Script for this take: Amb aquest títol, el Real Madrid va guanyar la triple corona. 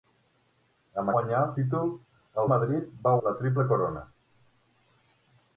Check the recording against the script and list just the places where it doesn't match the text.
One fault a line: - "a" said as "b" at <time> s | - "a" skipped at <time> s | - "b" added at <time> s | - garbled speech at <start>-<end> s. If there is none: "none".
- "aquest" said as "guanyar" at 1.2 s
- "Real" skipped at 2.5 s
- "guanyar" skipped at 3.1 s